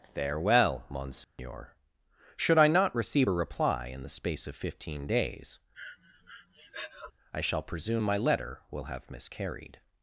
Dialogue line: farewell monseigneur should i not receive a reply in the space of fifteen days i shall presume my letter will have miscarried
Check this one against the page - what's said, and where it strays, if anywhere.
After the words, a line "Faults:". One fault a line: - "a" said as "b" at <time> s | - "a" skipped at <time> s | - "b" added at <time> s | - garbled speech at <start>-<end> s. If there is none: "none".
farewell monseigneur should i not receive a reply in the space of fifteen days i shall presume my letter will have miscarried
Faults:
none